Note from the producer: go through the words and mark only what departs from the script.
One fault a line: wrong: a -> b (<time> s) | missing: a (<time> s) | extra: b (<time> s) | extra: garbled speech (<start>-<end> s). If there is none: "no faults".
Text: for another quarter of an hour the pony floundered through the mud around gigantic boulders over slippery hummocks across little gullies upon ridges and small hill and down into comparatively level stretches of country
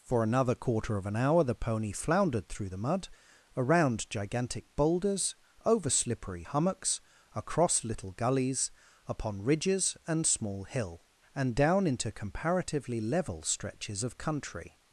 no faults